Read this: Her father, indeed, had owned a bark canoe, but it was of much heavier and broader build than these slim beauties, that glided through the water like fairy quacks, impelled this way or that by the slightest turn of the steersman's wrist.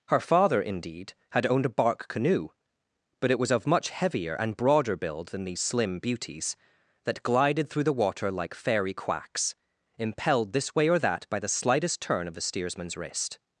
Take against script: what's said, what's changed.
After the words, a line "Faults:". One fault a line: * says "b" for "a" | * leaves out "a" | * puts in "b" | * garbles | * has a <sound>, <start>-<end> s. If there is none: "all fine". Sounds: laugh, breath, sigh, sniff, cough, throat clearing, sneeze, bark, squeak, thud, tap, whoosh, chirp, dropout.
Her father, indeed, had owned a bark canoe, but it was of much heavier and broader build than these slim beauties, that glided through the water like fairy quacks, impelled this way or that by the slightest turn of the steersman's wrist.
Faults:
all fine